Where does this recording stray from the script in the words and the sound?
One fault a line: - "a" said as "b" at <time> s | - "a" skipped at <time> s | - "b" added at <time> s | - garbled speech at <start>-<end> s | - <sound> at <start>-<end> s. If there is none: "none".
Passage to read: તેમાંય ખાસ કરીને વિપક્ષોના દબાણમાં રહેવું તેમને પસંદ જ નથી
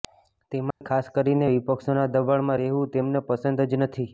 - dropout at 0.7-0.8 s